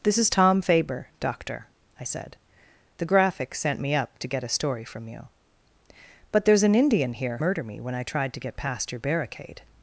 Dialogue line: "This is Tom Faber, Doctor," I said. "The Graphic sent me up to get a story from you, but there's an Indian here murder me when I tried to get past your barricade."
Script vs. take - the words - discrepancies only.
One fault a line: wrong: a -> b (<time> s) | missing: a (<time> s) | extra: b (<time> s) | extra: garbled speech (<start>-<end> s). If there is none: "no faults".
no faults